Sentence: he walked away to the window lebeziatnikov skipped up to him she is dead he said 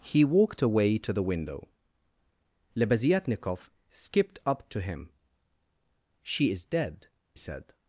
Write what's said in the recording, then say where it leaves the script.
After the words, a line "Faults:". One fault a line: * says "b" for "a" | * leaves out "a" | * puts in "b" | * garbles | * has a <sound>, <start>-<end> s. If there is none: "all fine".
he walked away to the window lebeziatnikov skipped up to him she is dead said
Faults:
* leaves out "he"